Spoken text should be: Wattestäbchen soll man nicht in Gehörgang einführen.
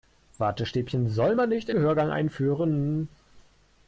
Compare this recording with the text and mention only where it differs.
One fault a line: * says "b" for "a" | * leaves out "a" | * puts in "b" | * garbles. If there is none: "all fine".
all fine